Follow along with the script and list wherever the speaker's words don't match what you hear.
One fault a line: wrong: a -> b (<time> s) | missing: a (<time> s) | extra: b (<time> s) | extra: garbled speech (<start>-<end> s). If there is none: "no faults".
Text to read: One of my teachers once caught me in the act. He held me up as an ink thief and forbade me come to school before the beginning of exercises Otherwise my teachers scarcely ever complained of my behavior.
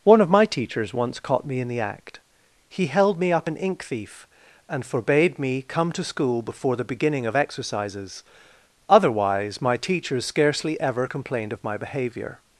missing: as (3.5 s)